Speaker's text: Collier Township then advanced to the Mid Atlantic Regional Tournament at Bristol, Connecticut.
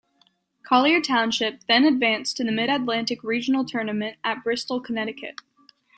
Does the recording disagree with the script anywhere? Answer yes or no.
no